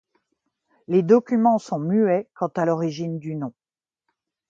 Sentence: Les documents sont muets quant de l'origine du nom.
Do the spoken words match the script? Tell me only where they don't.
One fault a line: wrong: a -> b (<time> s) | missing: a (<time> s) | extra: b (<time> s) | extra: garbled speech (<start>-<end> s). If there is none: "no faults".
wrong: de -> à (2.5 s)